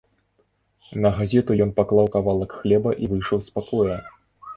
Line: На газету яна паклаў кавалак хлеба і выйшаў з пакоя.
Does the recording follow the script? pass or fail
fail